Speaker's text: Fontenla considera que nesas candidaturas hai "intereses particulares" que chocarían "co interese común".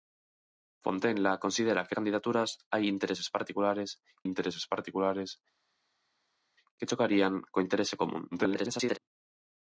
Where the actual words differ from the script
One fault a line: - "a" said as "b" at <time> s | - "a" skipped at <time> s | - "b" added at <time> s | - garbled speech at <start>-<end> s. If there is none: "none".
- "nesas" skipped at 1.9 s
- "intereses particulares" added at 4.3 s
- garbled speech at 8.3-9.0 s